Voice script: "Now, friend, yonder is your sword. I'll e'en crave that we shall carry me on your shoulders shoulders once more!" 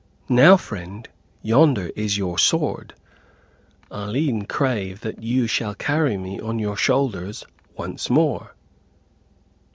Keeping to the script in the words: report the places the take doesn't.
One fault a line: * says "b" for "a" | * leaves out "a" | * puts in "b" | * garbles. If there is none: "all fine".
* says "you" for "we"
* leaves out "shoulders"